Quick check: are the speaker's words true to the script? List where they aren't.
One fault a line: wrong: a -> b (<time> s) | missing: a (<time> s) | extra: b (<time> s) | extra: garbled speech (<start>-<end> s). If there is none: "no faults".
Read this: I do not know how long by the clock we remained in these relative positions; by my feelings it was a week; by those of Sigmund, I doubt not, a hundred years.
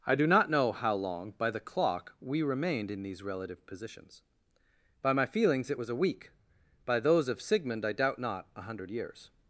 no faults